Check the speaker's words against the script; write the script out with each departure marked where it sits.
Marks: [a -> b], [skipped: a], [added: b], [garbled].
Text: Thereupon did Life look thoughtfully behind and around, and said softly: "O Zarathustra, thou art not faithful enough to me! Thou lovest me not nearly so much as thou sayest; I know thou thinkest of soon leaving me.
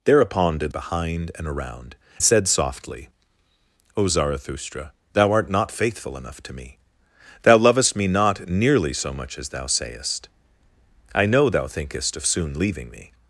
Thereupon did [skipped: Life look thoughtfully] behind and around, [skipped: and] said softly: "O Zarathustra, thou art not faithful enough to me! Thou lovest me not nearly so much as thou sayest; I know thou thinkest of soon leaving me.